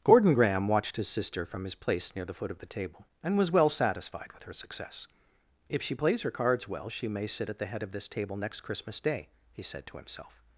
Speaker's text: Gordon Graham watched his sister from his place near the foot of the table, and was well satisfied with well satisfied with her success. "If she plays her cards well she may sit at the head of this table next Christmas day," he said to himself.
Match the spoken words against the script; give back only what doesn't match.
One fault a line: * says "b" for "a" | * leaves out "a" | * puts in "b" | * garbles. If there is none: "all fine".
* leaves out "well satisfied with"